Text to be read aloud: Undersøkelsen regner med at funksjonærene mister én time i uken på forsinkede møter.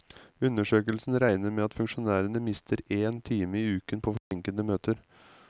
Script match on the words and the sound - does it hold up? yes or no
no